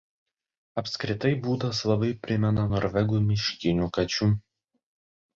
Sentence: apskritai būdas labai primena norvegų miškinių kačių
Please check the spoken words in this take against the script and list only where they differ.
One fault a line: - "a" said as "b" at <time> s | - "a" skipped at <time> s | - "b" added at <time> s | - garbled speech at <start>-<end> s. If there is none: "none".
none